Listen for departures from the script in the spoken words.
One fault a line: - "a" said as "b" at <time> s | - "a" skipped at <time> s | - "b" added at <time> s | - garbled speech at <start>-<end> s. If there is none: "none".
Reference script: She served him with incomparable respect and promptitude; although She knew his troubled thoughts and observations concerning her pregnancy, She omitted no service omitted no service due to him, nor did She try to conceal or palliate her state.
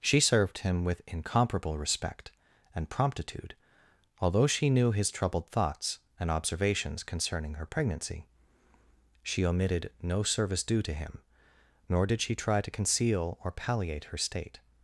- "omitted no service" skipped at 10.6 s